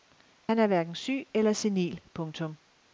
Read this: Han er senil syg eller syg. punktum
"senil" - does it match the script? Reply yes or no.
no